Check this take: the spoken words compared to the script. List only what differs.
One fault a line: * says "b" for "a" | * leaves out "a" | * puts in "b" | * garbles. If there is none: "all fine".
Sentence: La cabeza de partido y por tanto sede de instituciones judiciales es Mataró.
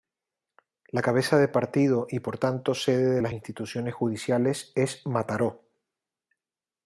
* puts in "las"